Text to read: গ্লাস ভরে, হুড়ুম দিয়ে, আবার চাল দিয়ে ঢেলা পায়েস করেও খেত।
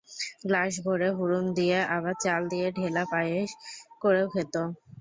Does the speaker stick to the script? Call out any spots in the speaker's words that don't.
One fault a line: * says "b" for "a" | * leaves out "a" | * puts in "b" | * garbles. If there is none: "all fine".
all fine